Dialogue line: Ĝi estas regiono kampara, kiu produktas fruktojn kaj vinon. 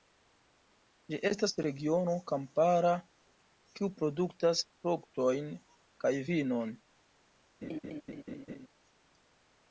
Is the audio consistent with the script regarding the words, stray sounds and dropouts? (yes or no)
no